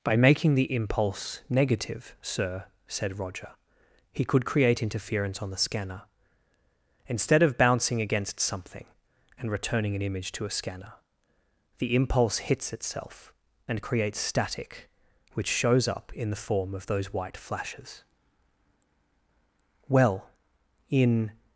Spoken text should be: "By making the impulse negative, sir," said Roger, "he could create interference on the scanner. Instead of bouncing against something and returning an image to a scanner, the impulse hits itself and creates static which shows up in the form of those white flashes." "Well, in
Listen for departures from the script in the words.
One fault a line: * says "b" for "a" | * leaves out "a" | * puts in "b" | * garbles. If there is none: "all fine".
all fine